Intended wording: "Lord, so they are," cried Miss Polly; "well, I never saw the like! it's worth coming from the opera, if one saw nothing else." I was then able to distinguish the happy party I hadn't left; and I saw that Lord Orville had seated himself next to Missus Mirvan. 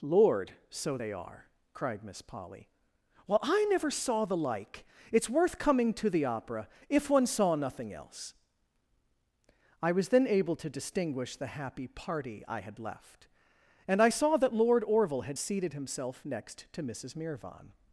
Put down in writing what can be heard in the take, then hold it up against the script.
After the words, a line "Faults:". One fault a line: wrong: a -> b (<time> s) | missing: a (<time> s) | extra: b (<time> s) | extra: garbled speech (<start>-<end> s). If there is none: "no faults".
"Lord, so they are," cried Miss Polly; "well, I never saw the like! it's worth coming to the opera, if one saw nothing else." I was then able to distinguish the happy party I had left; and I saw that Lord Orville had seated himself next to Missus Mirvan.
Faults:
wrong: from -> to (5.9 s)
wrong: hadn't -> had (12.6 s)